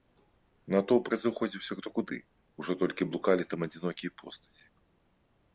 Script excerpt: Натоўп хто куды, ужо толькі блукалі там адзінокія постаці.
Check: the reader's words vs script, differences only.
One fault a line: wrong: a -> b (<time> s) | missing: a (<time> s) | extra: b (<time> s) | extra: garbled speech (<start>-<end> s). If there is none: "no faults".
extra: разыходзіўся (1.1 s)